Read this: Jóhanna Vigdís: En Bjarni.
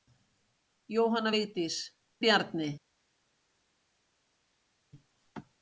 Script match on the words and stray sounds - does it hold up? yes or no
no